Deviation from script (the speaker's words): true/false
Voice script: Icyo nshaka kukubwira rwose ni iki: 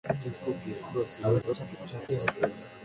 true